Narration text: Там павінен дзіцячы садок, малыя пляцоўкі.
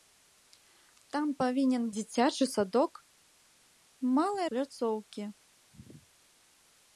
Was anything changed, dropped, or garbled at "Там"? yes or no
no